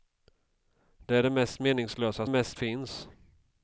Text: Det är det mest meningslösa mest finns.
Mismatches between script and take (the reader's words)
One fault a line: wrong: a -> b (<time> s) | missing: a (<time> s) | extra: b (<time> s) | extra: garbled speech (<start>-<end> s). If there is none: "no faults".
no faults